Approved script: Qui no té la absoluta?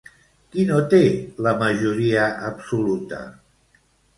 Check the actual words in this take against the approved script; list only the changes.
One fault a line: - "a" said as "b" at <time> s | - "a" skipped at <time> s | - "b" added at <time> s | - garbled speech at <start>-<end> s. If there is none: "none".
- "majoria" added at 1.6 s